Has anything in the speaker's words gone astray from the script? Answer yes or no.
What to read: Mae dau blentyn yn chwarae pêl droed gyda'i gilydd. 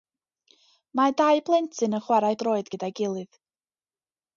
yes